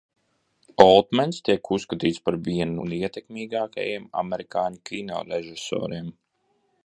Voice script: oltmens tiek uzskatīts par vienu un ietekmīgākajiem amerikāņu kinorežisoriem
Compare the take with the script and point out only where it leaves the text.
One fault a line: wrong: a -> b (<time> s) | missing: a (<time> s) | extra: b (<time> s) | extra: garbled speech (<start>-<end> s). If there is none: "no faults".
no faults